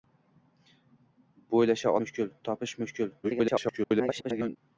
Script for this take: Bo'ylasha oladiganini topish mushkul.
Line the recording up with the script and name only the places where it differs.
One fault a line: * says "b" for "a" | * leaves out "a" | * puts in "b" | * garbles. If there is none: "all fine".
* says "mushkul" for "oladiganini"
* garbles